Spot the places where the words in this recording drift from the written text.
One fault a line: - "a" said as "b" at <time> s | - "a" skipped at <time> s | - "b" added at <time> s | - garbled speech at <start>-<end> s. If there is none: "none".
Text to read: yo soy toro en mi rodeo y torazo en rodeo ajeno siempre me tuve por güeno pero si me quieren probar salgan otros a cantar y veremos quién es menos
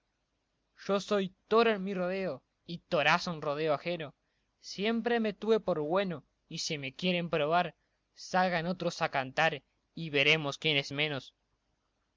- "pero" said as "y" at 6.5 s